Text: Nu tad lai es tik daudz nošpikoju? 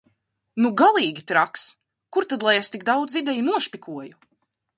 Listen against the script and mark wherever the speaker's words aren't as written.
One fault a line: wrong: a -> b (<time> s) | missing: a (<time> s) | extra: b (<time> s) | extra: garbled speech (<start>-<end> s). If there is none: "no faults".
extra: galīgi traks Kur (0.8 s)
extra: ideju (3.2 s)